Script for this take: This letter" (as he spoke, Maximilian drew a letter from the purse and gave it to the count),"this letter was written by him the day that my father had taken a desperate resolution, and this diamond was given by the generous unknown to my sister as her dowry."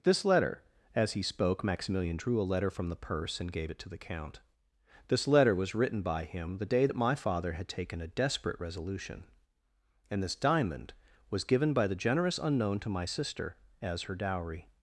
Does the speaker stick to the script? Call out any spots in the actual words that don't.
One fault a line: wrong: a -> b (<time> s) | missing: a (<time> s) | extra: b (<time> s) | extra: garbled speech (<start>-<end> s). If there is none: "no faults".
no faults